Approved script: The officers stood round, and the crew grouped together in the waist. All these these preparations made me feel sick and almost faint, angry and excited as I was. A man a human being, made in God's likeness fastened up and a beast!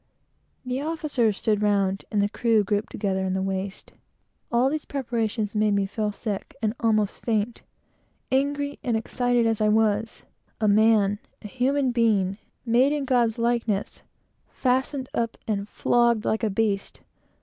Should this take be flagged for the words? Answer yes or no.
yes